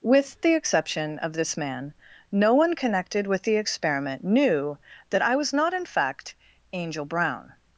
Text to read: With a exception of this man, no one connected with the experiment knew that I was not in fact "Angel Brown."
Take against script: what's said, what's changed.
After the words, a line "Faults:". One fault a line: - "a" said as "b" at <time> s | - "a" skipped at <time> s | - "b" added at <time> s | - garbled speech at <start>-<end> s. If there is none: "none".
With the exception of this man, no one connected with the experiment knew that I was not in fact "Angel Brown."
Faults:
- "a" said as "the" at 0.4 s